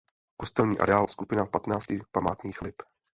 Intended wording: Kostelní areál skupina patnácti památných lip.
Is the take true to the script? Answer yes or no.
yes